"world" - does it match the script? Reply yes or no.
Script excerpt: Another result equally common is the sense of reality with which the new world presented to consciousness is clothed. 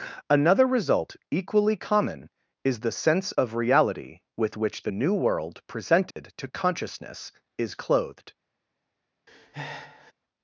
yes